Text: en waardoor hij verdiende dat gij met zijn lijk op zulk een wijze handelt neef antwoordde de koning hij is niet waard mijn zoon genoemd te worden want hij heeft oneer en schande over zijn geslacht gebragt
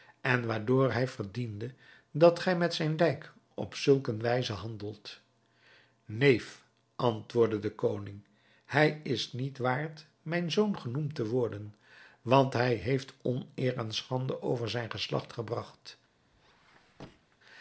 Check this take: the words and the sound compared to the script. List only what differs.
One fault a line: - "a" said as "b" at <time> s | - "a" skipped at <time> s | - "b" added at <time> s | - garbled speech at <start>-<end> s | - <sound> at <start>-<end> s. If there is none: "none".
- squeak at 16.3-17.4 s